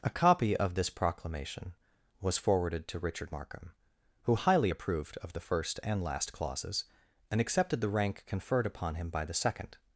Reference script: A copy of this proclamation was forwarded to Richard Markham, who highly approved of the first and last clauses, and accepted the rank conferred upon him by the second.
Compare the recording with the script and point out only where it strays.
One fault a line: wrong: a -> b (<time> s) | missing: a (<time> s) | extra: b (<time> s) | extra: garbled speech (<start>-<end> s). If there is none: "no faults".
no faults